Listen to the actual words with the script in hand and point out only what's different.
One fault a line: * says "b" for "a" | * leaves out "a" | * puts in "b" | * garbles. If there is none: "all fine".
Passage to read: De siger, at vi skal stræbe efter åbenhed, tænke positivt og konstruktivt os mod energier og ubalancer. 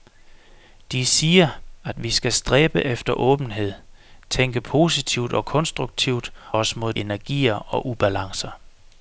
all fine